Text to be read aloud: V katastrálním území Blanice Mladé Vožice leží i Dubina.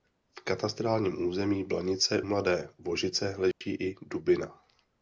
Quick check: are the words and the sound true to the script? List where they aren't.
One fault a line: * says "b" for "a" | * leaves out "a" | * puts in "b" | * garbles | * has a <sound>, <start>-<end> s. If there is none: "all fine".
* has a dropout, 3.5-3.6 s